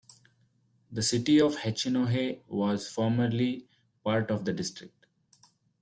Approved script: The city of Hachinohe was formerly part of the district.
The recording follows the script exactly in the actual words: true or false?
true